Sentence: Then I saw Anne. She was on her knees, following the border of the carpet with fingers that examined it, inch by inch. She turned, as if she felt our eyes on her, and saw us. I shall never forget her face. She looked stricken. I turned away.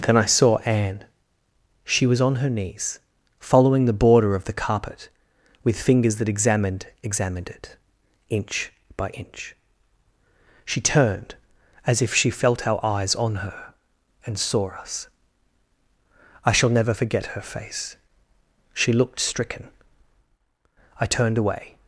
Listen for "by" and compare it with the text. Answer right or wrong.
right